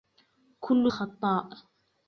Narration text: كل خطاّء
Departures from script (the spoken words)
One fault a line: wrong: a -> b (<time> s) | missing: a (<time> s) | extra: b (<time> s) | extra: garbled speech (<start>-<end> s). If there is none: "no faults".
no faults